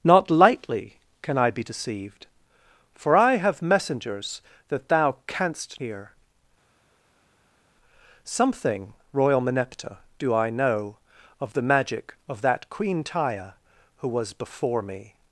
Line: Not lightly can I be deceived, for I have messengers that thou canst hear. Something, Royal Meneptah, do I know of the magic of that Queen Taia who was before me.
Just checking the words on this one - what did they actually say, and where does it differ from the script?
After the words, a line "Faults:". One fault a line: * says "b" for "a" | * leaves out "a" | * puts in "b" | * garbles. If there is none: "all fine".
Not lightly can I be deceived, for I have messengers that thou canst hear. Something, Royal Meneptah, do I know of the magic of that Queen Taia who was before me.
Faults:
all fine